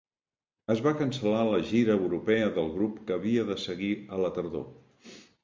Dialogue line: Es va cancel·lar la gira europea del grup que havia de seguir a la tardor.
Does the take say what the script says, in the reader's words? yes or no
yes